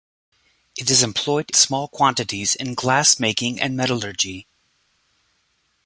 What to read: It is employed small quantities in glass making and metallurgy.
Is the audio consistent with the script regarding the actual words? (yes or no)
yes